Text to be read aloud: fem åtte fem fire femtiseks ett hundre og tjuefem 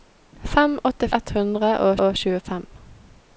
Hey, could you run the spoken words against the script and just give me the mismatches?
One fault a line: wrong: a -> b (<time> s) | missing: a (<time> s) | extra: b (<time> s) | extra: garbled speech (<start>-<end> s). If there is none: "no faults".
missing: fem fire femtiseks (1.1 s)
extra: og (2.1 s)